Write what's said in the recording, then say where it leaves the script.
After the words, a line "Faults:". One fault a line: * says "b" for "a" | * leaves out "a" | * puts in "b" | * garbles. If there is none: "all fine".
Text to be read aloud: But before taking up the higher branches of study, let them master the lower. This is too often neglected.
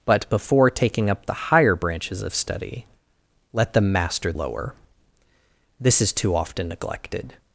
But before taking up the higher branches of study, let them master lower. This is too often neglected.
Faults:
* leaves out "the"